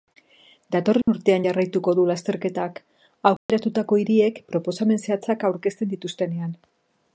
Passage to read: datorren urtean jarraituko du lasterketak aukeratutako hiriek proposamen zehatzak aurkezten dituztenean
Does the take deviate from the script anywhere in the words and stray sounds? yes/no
yes